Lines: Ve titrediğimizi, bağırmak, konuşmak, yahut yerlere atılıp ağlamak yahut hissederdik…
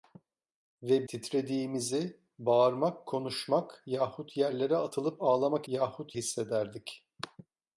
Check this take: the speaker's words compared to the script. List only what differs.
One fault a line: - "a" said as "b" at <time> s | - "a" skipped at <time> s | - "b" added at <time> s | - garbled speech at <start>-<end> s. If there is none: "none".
none